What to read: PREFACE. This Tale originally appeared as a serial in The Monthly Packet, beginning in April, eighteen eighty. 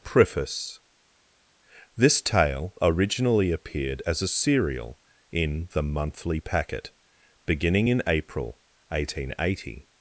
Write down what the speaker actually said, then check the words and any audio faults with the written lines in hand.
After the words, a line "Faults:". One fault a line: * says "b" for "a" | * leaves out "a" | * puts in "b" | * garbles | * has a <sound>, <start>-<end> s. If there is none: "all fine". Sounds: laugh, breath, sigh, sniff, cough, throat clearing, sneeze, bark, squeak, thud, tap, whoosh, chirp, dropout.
PREFACE. This Tale originally appeared as a serial in The Monthly Packet, beginning in April, eighteen eighty.
Faults:
all fine